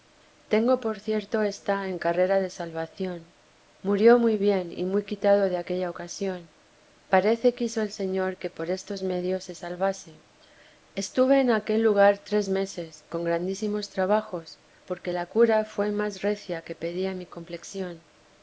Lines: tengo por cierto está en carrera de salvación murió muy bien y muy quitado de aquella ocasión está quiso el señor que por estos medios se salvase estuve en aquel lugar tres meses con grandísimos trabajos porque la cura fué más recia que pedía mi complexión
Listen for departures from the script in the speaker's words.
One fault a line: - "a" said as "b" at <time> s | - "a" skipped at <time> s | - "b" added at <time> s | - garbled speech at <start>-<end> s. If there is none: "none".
- "está" said as "parece" at 7.1 s